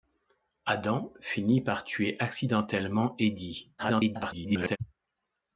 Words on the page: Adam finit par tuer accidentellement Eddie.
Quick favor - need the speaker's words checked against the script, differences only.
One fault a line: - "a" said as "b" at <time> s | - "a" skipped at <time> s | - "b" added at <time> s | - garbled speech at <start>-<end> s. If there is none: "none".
- garbled speech at 3.8-4.8 s